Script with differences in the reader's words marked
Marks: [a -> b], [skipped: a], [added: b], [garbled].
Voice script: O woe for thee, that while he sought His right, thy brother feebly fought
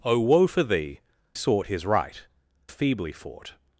O woe for thee, [skipped: that while he] sought His right, [skipped: thy brother] feebly fought